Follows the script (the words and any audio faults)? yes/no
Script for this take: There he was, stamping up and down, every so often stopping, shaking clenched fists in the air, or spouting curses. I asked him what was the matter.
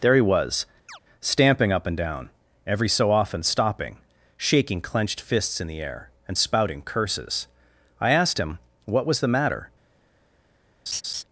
no